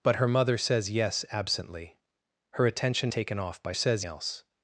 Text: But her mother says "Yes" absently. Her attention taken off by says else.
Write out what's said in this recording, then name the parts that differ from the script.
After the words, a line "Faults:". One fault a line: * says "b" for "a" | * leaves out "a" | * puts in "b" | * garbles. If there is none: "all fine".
But her mother says "Yes" absently. Her attention taken off by says else.
Faults:
all fine